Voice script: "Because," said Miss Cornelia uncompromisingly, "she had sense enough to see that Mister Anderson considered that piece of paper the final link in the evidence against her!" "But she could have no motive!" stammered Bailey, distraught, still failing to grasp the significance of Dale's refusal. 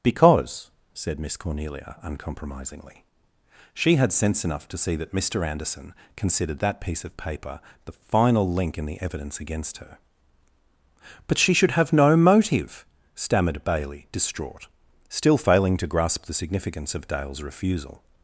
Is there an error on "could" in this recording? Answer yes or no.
yes